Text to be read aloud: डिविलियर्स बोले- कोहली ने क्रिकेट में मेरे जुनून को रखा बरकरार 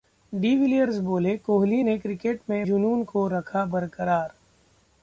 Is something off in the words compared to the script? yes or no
yes